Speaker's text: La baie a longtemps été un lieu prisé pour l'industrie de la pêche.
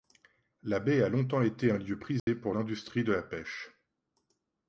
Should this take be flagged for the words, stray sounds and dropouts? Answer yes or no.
yes